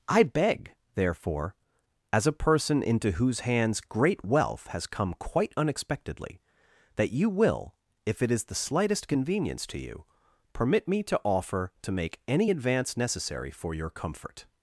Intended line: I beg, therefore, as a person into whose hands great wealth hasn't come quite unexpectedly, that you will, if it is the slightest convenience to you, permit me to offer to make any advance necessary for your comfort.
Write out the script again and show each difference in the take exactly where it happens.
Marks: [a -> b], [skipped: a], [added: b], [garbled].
I beg, therefore, as a person into whose hands great wealth [hasn't -> has] come quite unexpectedly, that you will, if it is the slightest convenience to you, permit me to offer to make any advance necessary for your comfort.